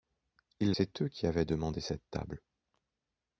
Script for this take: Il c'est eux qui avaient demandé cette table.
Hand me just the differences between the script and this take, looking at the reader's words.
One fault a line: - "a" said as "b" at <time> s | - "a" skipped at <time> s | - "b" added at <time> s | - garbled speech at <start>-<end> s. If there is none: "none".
none